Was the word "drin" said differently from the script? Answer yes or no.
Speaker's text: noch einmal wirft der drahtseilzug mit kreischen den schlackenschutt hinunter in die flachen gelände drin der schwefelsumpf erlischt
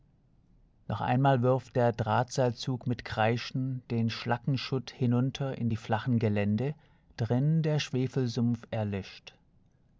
no